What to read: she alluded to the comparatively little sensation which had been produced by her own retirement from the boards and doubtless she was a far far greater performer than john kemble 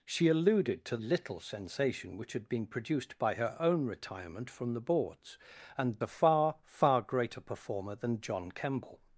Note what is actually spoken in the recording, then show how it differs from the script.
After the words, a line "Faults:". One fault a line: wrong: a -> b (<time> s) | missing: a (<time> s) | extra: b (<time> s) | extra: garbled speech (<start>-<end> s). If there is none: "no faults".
she alluded to little sensation which had been produced by her own retirement from the boards and a far far greater performer than john kemble
Faults:
missing: the comparatively (1.0 s)
missing: doubtless she was (6.0 s)